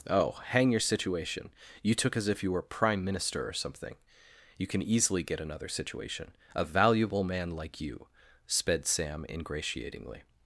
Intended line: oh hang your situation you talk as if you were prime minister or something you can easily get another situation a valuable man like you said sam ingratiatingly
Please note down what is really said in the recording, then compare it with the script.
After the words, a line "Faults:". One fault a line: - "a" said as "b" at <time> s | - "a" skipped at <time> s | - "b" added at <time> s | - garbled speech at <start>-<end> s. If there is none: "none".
oh hang your situation you took as if you were prime minister or something you can easily get another situation a valuable man like you sped sam ingratiatingly
Faults:
- "talk" said as "took" at 1.9 s
- "said" said as "sped" at 8.5 s